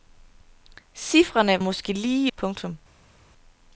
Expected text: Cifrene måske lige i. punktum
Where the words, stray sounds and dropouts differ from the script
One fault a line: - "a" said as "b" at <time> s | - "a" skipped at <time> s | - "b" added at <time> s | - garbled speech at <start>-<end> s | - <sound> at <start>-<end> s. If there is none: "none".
none